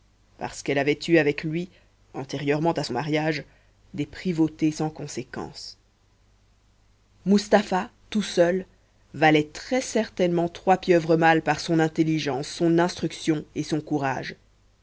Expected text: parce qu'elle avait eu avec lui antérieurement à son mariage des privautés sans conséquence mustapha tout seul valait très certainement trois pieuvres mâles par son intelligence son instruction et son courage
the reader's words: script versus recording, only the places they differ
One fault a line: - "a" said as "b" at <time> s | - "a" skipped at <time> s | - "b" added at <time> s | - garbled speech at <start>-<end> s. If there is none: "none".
none